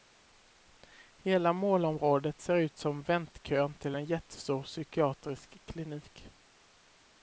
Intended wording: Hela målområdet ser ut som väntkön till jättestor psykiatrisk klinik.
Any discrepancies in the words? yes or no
yes